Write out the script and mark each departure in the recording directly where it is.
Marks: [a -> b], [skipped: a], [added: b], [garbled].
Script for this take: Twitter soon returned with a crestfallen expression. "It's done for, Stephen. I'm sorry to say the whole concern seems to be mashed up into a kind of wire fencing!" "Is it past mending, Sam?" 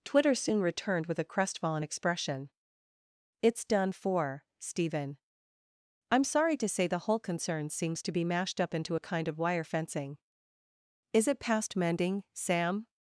Twitter soon returned with a crestfallen expression. "It's done for, Stephen. I'm sorry to say the whole concern seems to be mashed up into a kind of wire fencing!" "Is it past mending, Sam?"